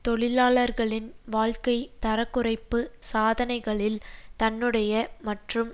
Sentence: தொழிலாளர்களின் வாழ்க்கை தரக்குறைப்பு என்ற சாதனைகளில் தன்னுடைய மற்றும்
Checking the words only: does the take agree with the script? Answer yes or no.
no